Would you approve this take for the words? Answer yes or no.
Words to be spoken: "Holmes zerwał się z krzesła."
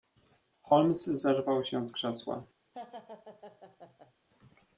yes